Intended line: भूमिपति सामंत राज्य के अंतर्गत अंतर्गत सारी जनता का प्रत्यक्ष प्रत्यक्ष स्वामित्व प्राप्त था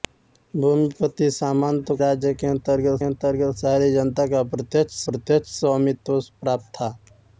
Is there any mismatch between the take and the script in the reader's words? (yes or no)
no